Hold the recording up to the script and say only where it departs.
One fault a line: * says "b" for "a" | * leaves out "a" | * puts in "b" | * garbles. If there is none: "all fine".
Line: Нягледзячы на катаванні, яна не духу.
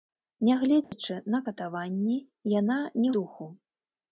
all fine